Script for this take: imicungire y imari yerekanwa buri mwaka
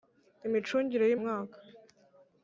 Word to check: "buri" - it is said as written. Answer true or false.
false